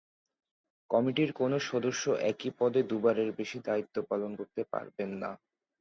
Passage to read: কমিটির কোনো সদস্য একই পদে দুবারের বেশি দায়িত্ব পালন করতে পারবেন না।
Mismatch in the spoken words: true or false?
false